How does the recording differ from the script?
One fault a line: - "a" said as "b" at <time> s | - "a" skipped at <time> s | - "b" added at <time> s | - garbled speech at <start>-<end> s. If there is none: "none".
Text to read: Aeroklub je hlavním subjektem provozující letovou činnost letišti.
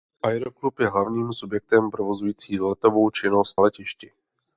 none